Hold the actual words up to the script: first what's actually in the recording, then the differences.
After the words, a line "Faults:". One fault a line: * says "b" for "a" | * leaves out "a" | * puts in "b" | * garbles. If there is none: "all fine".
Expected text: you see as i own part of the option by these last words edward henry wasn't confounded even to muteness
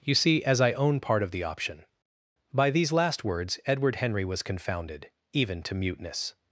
you see as i own part of the option by these last words edward henry was confounded even to muteness
Faults:
* says "was" for "wasn't"